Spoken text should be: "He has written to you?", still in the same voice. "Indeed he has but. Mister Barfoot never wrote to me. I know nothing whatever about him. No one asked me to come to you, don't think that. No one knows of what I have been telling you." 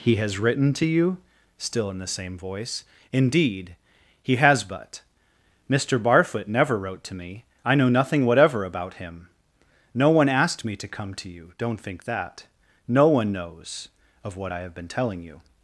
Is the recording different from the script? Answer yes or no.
no